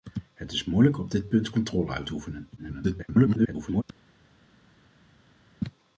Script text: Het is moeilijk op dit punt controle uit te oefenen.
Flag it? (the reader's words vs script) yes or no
yes